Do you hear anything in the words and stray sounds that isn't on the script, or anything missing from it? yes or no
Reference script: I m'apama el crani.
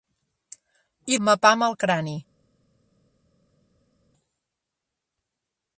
no